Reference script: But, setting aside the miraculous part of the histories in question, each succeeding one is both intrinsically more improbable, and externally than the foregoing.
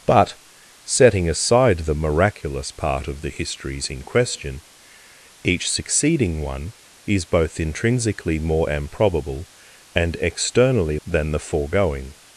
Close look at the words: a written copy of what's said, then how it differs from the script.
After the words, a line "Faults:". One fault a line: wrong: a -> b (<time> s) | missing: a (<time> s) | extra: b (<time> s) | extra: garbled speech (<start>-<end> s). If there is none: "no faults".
But, setting aside the miraculous part of the histories in question, each succeeding one is both intrinsically more improbable, and externally than the foregoing.
Faults:
no faults